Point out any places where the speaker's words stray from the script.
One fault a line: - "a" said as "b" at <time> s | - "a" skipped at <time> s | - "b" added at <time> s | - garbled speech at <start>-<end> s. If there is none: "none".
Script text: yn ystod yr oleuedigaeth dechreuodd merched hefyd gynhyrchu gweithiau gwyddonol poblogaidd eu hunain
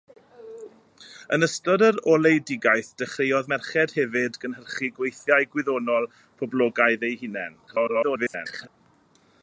- garbled speech at 7.7-8.7 s